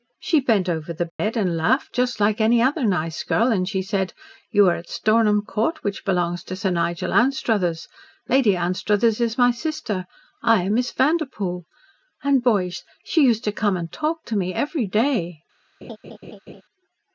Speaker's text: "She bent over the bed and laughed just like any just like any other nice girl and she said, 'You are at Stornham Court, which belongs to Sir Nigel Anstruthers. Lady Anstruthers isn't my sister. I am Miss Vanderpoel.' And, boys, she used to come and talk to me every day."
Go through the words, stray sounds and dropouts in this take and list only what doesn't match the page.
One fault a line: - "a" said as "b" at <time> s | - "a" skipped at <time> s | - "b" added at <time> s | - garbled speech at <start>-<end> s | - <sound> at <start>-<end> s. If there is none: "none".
- dropout at 1.1-1.2 s
- "just like any" skipped at 2.6 s
- "isn't" said as "is" at 9.2 s
- laugh at 15.8-16.6 s